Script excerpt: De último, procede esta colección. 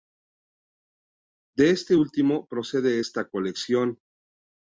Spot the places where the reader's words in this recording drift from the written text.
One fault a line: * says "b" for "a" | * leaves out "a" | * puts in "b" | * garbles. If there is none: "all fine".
* puts in "este"